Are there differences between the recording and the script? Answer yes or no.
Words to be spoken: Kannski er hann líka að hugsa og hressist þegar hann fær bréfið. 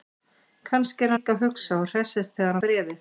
yes